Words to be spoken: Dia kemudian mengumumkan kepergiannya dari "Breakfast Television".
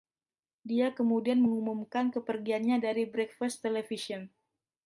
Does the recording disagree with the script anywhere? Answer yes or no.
no